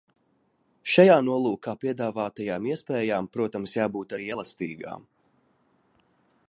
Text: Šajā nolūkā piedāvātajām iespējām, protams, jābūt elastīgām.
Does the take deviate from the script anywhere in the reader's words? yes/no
yes